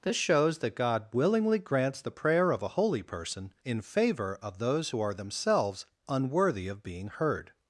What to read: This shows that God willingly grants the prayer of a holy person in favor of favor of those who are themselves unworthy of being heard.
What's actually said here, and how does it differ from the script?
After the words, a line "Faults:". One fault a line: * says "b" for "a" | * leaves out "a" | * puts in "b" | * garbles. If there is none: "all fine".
This shows that God willingly grants the prayer of a holy person in favor of those who are themselves unworthy of being heard.
Faults:
* leaves out "favor of"